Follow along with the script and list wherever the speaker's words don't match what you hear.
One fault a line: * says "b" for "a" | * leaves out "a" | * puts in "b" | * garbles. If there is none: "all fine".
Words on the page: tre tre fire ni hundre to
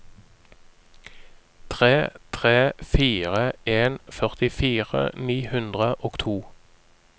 * puts in "en førtifire"
* puts in "og"